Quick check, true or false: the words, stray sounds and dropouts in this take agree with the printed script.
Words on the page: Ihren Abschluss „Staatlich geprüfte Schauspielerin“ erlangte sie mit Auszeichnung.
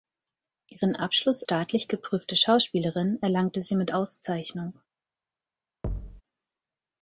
false